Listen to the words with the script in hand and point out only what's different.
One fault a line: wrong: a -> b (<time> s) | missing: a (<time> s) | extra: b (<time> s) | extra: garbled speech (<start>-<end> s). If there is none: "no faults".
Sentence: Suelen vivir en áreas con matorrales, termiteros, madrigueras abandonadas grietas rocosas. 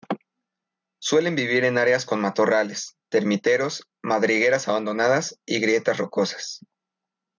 extra: y (5.5 s)